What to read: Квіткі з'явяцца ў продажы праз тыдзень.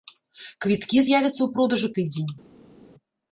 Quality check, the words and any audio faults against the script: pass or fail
fail